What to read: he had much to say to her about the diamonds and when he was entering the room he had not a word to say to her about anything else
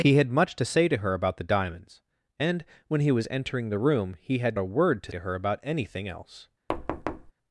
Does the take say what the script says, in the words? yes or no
no